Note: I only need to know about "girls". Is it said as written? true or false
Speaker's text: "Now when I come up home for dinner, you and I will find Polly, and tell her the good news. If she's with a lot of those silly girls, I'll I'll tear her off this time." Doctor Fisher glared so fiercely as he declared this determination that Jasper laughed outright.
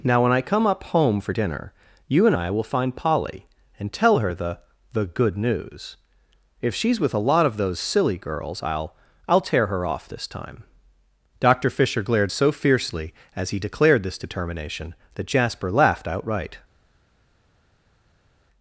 true